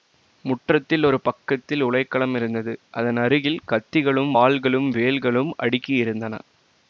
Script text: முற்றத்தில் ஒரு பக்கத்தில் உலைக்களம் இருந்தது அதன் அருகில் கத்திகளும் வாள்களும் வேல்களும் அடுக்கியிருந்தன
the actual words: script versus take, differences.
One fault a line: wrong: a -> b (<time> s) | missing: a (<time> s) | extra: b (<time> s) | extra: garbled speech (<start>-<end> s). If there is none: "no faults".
no faults